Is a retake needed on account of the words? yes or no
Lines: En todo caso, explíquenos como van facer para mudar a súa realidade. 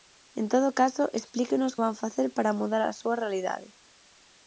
yes